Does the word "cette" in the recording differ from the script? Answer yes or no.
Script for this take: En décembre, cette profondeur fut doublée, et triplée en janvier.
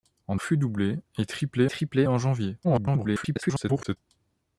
yes